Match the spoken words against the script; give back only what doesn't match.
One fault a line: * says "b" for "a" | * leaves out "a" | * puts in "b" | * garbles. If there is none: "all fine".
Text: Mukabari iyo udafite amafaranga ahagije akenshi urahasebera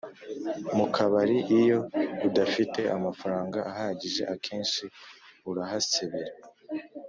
all fine